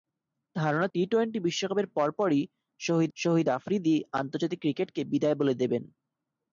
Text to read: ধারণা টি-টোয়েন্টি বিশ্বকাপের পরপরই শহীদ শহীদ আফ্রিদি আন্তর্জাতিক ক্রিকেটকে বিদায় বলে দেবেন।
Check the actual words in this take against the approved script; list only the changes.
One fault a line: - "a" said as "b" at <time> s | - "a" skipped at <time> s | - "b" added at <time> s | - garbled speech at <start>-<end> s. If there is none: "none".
none